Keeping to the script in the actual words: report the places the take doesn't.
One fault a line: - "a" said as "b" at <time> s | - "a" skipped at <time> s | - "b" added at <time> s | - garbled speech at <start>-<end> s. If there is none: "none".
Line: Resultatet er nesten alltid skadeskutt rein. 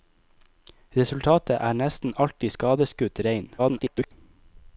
- garbled speech at 3.6-4.1 s